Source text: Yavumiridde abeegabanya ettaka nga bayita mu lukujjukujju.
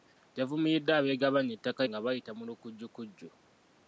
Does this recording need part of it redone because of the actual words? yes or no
no